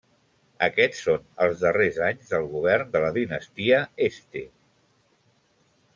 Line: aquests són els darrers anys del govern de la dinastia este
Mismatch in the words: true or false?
false